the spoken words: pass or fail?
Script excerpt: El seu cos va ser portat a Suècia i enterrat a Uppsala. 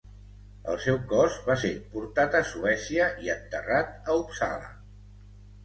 pass